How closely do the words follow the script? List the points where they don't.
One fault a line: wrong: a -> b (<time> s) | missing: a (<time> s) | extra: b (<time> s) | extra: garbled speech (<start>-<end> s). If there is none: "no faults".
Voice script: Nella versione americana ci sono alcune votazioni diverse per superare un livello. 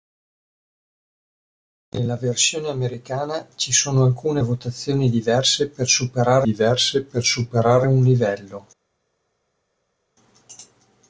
extra: diverse per superare (6.4 s)